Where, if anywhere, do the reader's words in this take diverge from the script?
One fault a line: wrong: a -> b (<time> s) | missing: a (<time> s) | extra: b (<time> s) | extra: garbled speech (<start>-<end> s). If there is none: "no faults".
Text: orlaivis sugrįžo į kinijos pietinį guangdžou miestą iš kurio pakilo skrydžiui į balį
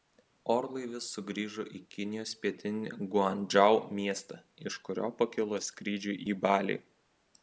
no faults